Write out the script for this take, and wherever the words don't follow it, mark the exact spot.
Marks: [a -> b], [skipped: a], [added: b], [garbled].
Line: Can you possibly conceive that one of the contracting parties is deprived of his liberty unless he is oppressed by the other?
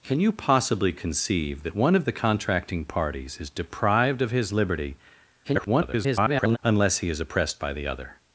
Can you possibly conceive that one of the contracting parties is deprived of his liberty [garbled] unless he is oppressed by the other?